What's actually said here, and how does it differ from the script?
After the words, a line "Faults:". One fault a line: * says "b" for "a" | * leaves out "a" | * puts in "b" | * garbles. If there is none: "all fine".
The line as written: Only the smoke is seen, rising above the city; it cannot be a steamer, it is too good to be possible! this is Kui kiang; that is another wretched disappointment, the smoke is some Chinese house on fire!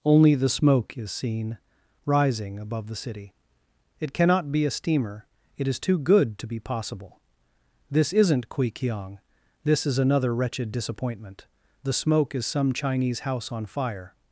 Only the smoke is seen, rising above the city; it cannot be a steamer, it is too good to be possible! this isn't Kui kiang; this is another wretched disappointment, the smoke is some Chinese house on fire!
Faults:
* says "isn't" for "is"
* says "this" for "that"